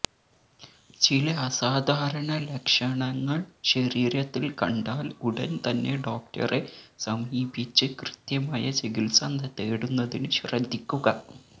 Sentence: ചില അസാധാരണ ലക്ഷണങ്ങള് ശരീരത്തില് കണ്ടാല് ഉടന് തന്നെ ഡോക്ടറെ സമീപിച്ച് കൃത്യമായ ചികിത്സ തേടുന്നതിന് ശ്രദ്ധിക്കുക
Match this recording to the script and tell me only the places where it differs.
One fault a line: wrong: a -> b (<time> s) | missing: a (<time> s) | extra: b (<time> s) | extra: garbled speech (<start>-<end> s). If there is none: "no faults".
no faults